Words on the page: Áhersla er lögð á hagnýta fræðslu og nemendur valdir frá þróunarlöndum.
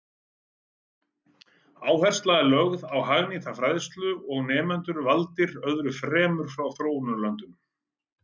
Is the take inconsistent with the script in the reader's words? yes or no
yes